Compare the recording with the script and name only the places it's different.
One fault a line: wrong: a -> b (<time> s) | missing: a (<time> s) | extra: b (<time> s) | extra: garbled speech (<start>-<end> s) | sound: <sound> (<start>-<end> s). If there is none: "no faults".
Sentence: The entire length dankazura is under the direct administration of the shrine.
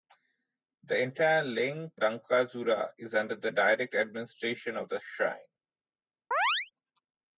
sound: chirp (6.3-6.7 s)